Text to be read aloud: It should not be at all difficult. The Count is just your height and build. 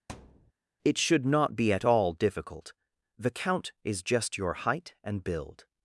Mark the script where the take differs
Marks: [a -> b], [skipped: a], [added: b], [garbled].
It should not be at all difficult. The Count is just your height and build.